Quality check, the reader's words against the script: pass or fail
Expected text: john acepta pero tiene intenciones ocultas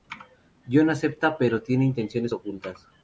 pass